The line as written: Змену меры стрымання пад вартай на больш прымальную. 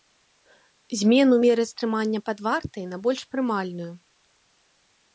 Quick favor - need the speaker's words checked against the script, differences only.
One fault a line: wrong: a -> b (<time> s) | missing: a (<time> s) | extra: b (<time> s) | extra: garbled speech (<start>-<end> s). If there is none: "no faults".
no faults